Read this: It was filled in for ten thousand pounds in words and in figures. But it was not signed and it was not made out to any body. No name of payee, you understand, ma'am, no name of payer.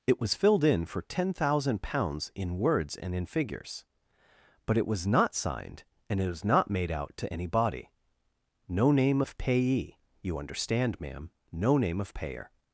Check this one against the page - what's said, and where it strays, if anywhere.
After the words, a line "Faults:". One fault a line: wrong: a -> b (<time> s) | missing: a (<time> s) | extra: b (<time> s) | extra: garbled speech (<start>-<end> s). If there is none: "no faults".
It was filled in for ten thousand pounds in words and in figures. But it was not signed and it was not made out to any body. No name of payee, you understand, ma'am, no name of payer.
Faults:
no faults